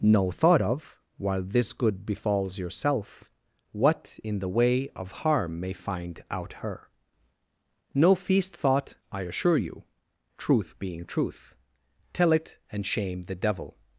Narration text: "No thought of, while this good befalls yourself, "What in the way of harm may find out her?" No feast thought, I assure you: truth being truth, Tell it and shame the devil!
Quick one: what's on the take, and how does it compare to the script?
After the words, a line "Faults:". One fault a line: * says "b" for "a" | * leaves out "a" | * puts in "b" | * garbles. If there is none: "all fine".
"No thought of, while this good befalls yourself, "What in the way of harm may find out her?" No feast thought, I assure you: truth being truth, Tell it and shame the devil!
Faults:
all fine